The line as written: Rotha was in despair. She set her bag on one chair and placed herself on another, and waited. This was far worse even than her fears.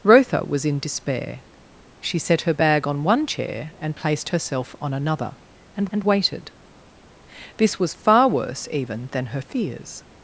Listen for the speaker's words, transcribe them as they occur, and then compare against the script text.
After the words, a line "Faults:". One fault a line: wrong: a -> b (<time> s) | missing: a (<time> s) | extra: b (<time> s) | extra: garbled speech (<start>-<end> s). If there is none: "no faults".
Rotha was in despair. She set her bag on one chair and placed herself on another, and and waited. This was far worse even than her fears.
Faults:
extra: and (5.9 s)